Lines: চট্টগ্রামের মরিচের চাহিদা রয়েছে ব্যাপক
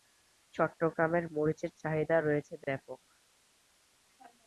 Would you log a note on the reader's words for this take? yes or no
no